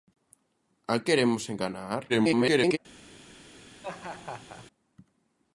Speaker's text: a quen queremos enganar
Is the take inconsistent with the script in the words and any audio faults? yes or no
yes